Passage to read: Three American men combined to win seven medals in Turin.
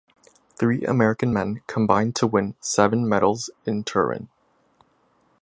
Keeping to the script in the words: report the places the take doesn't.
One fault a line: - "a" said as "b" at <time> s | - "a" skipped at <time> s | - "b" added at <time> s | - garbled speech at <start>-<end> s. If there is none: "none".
none